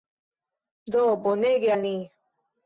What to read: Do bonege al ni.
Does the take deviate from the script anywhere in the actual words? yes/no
no